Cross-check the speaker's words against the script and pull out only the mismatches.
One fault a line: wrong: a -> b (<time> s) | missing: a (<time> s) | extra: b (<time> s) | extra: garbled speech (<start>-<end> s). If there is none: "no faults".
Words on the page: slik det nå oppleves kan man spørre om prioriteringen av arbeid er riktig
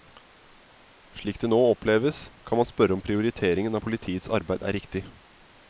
extra: politiets (3.8 s)